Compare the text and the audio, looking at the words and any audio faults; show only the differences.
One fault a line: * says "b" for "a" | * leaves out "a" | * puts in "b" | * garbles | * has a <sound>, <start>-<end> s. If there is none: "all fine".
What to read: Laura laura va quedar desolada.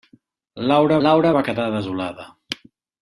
all fine